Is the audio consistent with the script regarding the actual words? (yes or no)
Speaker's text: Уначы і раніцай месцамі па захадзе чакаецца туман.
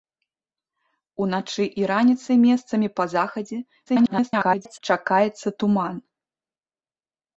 no